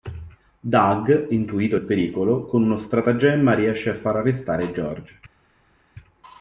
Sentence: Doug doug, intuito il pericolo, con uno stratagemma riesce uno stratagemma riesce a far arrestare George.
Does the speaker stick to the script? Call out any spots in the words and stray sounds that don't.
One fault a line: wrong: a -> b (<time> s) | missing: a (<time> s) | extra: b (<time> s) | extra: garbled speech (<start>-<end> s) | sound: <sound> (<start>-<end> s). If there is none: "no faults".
missing: doug (1.3 s)
missing: uno stratagemma riesce (3.9 s)